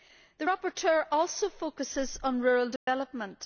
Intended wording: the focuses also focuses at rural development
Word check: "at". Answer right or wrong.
wrong